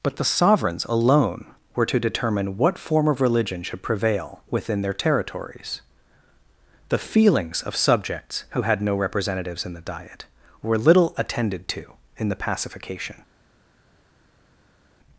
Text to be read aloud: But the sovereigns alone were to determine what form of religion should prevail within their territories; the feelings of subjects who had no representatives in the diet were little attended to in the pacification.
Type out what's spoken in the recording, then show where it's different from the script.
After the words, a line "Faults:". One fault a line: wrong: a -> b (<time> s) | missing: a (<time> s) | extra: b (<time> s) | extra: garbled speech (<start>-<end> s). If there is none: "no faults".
But the sovereigns alone were to determine what form of religion should prevail within their territories; the feelings of subjects who had no representatives in the diet were little attended to in the pacification.
Faults:
no faults